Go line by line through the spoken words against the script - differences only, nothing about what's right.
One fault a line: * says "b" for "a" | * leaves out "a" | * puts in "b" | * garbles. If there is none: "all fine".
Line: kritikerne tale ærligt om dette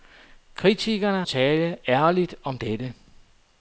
all fine